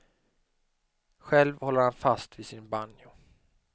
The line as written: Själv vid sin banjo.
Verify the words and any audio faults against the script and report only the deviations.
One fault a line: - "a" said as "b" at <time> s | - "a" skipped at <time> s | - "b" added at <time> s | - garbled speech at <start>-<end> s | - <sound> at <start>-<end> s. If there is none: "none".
- "håller han fast" added at 1.6 s